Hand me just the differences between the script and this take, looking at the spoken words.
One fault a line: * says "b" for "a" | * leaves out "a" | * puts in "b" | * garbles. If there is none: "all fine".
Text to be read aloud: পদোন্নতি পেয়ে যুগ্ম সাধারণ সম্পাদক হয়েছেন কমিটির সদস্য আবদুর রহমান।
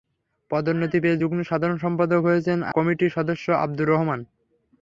all fine